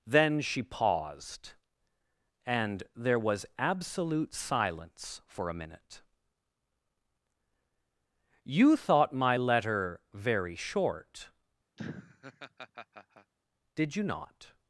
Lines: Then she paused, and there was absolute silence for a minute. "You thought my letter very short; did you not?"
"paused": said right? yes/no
yes